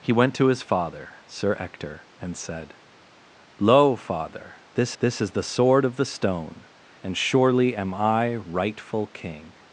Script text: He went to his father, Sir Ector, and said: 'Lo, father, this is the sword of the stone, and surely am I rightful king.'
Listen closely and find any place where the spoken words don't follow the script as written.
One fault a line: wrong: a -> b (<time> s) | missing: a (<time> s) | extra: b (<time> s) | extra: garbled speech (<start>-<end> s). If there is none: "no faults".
extra: this (5.0 s)